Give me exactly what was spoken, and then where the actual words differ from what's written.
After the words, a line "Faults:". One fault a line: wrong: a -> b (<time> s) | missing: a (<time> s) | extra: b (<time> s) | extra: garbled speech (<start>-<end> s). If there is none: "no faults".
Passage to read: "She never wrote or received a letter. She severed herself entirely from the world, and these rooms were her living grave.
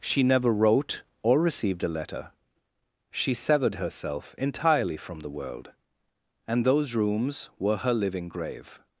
"She never wrote or received a letter. She severed herself entirely from the world, and those rooms were her living grave.
Faults:
wrong: these -> those (6.7 s)